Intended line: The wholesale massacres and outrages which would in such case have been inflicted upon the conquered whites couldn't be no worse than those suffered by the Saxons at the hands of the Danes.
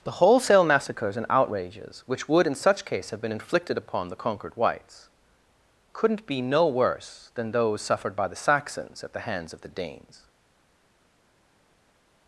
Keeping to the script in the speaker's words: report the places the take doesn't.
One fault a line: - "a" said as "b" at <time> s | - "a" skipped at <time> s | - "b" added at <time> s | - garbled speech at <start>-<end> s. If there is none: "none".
none